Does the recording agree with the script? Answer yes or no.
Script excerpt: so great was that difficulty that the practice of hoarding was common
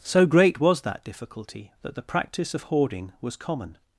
yes